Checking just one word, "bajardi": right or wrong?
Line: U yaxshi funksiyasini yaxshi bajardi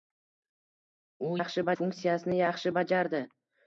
right